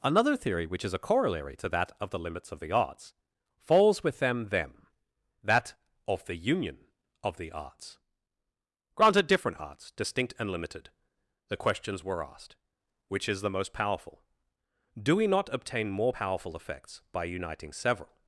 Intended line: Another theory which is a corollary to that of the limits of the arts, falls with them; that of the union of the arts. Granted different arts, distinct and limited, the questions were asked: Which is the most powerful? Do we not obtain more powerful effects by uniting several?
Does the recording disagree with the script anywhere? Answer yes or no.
yes